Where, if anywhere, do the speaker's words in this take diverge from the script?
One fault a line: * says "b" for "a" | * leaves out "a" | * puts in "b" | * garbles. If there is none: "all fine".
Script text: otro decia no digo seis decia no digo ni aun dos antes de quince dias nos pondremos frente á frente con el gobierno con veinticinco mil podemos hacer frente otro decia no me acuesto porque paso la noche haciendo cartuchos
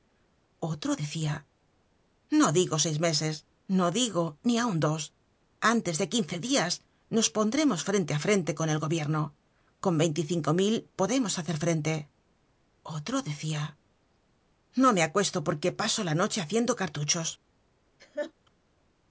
* says "meses" for "decia"